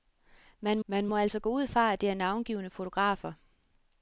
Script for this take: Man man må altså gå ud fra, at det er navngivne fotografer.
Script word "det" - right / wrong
right